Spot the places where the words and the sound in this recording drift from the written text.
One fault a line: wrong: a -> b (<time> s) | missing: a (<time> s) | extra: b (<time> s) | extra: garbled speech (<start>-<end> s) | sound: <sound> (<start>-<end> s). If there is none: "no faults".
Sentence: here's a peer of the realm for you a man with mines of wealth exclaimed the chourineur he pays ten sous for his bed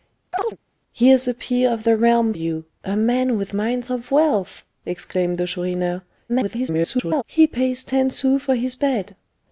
sound: chirp (0.3-0.6 s)
missing: for (2.3 s)
extra: garbled speech (6.3-7.2 s)